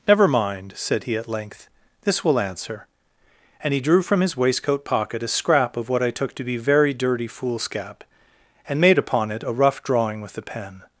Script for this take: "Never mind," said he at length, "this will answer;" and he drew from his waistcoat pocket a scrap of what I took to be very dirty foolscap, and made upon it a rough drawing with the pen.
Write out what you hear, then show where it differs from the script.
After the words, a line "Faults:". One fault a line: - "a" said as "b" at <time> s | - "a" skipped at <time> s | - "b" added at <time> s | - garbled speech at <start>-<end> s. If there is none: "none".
"Never mind," said he at length, "this will answer;" and he drew from his waistcoat pocket a scrap of what I took to be very dirty foolscap, and made upon it a rough drawing with the pen.
Faults:
none